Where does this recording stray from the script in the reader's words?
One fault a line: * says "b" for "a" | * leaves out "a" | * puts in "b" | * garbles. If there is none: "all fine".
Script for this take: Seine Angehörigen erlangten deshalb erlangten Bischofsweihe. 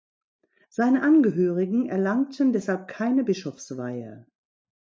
* says "keine" for "erlangten"